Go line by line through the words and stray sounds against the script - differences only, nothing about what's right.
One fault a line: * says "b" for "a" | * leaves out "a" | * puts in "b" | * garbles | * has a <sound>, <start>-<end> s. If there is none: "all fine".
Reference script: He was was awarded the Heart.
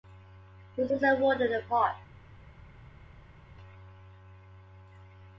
all fine